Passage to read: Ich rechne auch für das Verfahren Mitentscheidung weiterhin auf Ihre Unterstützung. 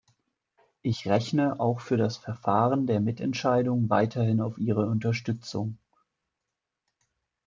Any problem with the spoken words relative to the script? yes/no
yes